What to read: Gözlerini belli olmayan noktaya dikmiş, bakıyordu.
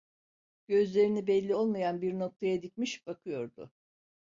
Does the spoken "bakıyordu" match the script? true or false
true